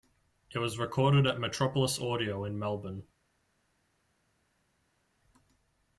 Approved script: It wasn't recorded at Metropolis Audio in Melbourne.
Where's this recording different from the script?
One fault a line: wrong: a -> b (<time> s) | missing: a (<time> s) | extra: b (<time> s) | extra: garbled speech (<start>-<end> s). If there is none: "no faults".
wrong: wasn't -> was (0.6 s)